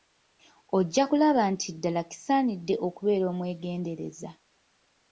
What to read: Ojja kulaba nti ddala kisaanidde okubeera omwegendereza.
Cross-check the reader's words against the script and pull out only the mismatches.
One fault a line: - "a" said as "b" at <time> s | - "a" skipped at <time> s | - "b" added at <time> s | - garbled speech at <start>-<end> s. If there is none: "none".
none